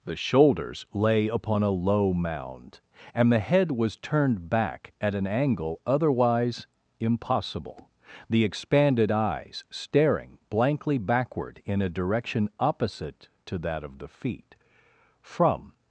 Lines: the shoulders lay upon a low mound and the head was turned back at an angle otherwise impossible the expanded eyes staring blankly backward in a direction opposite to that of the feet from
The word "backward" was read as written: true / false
true